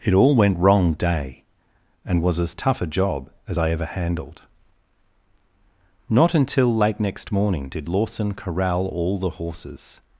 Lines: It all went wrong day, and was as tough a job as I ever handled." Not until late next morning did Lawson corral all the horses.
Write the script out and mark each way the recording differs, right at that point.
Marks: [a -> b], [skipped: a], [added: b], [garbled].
It all went wrong day, and was as tough a job as I ever handled." Not until late next morning did Lawson corral all the horses.